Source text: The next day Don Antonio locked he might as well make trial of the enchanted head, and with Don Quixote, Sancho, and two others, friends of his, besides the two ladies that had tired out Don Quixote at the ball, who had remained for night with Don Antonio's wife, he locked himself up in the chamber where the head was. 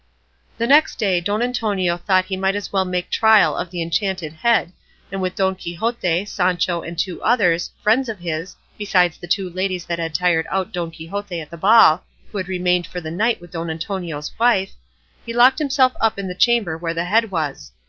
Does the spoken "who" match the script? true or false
true